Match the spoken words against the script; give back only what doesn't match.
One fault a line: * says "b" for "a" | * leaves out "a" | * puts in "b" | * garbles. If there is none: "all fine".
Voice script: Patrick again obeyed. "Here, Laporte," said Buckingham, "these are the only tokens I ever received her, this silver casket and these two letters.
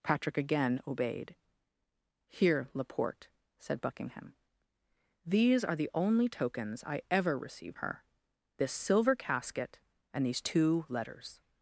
all fine